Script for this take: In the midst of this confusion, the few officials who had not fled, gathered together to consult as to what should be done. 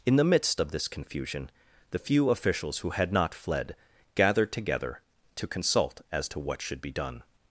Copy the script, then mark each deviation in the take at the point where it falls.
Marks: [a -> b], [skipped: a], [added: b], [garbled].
In the midst of this confusion, the few officials who had not fled, gathered together to consult as to what should be done.